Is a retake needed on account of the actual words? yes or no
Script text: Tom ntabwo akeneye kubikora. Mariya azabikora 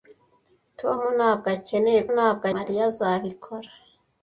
yes